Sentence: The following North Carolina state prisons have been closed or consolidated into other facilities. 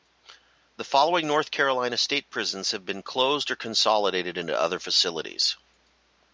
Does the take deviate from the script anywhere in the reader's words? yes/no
no